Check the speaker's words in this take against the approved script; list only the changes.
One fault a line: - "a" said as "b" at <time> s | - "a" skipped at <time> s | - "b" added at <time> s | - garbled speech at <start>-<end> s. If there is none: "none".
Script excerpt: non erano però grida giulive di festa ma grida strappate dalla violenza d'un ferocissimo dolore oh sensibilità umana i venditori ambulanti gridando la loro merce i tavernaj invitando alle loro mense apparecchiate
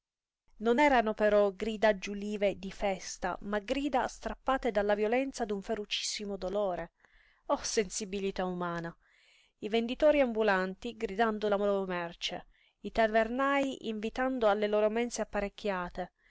none